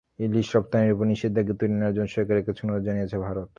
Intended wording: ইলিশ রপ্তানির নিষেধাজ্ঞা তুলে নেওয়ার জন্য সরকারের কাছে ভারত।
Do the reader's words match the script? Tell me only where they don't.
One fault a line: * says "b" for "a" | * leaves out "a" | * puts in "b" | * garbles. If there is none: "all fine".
* puts in "ওপর"
* puts in "অনুরোধ জানিয়েছে"